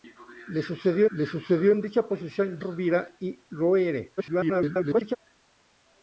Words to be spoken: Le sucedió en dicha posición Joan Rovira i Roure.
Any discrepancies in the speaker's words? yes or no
yes